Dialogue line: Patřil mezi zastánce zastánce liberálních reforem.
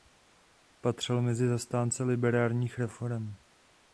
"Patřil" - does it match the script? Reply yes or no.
yes